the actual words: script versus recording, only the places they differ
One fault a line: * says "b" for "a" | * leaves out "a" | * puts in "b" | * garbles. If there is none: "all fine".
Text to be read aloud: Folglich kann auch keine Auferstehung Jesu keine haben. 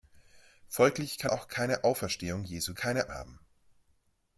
all fine